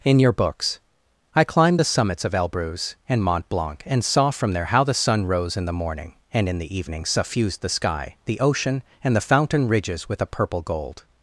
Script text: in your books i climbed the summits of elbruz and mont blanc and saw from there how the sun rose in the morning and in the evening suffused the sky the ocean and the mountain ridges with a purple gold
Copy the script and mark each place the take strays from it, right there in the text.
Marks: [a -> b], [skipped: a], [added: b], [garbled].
in your books i climbed the summits of elbruz and mont blanc and saw from there how the sun rose in the morning and in the evening suffused the sky the ocean and the [mountain -> fountain] ridges with a purple gold